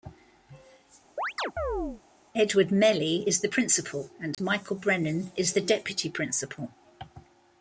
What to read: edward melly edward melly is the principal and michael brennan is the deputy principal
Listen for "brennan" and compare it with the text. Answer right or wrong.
right